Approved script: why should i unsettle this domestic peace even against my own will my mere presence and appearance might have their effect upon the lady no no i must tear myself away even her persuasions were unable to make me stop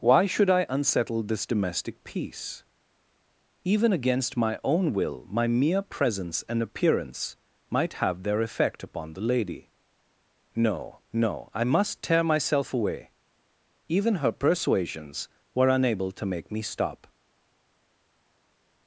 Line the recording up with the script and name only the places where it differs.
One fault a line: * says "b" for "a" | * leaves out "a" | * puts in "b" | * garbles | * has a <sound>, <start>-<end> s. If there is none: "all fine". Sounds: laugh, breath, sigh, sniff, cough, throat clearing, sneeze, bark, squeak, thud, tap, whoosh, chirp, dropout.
all fine